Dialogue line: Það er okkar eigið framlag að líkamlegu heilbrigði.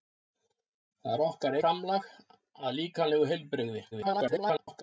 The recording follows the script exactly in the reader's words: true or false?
false